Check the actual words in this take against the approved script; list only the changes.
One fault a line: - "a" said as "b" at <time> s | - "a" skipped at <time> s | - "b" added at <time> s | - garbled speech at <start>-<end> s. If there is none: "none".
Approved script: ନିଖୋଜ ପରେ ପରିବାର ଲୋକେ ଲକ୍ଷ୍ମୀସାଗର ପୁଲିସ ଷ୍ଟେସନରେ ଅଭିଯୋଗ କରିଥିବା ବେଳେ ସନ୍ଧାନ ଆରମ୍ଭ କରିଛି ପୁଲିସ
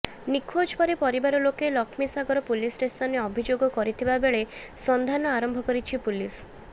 none